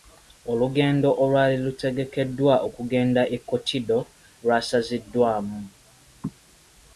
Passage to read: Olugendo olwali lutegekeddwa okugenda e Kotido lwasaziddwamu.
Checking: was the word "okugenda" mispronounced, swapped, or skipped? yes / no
no